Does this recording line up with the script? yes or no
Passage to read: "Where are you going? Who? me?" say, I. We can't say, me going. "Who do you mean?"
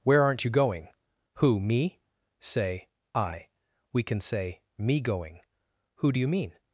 no